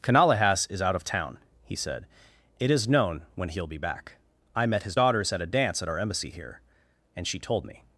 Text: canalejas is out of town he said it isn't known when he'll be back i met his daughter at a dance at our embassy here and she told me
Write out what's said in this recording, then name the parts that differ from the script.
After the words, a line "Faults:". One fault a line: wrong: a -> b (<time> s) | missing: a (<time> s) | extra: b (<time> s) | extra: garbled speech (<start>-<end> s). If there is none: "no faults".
canalejas is out of town he said it is known when he'll be back i met his daughters at a dance at our embassy here and she told me
Faults:
wrong: isn't -> is (2.7 s)
wrong: daughter -> daughters (4.9 s)